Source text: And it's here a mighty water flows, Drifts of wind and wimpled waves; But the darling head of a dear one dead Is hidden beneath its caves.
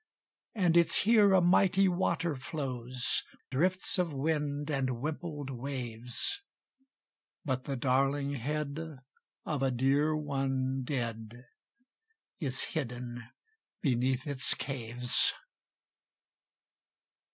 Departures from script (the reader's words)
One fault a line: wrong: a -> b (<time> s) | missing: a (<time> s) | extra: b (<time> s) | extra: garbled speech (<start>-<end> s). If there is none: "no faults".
no faults